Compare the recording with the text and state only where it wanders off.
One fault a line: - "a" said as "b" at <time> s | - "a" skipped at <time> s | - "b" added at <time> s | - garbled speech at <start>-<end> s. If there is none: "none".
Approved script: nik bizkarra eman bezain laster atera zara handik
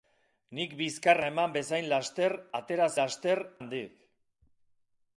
- "zara" said as "laster" at 3.0 s